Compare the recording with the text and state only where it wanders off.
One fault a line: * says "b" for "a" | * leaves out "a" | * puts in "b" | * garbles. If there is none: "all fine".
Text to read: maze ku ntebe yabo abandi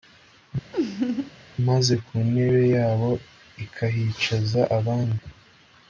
* puts in "ikahicaza"